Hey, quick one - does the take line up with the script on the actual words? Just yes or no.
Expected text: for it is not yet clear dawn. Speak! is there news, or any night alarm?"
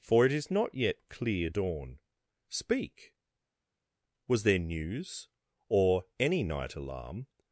no